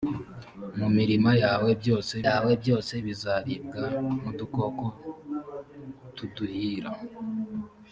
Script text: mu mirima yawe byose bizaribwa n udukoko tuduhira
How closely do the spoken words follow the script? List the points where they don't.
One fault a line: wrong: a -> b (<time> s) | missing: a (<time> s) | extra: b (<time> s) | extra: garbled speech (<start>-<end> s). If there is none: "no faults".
extra: yawe byose (2.3 s)